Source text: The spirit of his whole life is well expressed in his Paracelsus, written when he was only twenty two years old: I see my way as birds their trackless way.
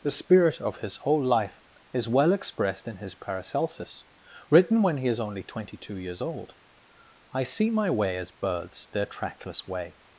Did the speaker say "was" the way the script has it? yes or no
no